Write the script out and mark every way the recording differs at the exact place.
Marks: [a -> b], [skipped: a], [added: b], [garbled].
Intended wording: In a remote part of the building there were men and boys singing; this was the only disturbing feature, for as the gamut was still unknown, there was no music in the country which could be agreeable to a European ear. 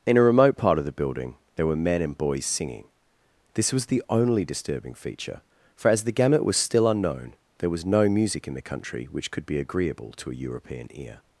In a remote part of the building there were men and boys singing; this was the only disturbing feature, for as the gamut was still unknown, there was no music in the country which could be agreeable to a European ear.